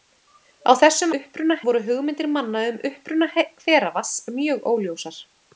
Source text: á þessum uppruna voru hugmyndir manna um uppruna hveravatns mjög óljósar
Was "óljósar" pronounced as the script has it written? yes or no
yes